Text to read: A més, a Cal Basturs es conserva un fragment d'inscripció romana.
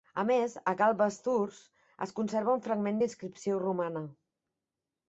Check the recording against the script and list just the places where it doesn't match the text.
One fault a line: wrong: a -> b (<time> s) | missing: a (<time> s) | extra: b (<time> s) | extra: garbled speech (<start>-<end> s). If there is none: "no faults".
no faults